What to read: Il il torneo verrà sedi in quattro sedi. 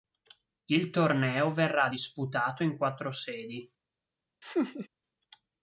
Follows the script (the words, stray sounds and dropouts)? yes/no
no